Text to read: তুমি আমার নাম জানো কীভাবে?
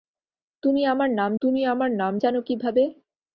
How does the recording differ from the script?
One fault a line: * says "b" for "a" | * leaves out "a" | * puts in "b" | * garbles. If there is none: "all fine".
* puts in "তুমি আমার নাম"